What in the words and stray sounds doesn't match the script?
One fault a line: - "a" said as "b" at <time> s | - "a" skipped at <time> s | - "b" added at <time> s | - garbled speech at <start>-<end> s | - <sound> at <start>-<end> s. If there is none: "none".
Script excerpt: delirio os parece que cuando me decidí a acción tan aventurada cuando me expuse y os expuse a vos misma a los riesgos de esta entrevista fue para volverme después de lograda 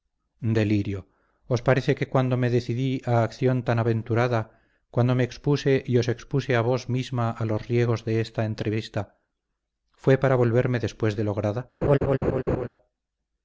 - laugh at 11.8-12.7 s